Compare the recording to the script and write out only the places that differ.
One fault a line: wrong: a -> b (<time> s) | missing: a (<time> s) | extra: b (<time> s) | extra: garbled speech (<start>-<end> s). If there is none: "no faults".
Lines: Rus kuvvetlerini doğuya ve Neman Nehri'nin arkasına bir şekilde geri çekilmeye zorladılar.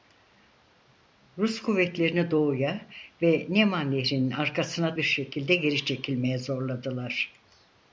no faults